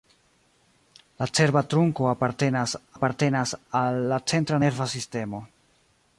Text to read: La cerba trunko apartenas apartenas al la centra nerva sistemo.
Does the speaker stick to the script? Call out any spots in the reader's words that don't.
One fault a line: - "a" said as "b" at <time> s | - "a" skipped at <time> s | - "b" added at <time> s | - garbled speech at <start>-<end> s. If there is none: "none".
none